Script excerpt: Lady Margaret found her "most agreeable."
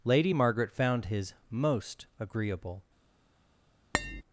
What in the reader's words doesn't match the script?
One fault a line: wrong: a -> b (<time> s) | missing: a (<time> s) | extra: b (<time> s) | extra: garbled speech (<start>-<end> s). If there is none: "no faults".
wrong: her -> his (1.1 s)